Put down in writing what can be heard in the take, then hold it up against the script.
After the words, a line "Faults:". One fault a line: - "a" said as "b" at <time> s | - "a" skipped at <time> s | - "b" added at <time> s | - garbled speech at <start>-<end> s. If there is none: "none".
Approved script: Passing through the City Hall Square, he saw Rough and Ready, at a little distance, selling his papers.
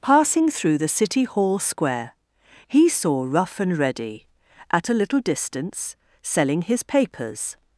Passing through the City Hall Square, he saw Rough and Ready, at a little distance, selling his papers.
Faults:
none